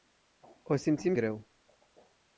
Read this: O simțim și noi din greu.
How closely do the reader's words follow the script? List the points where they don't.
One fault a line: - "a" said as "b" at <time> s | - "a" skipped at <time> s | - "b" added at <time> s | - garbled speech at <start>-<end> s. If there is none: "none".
- "și noi din" skipped at 1.1 s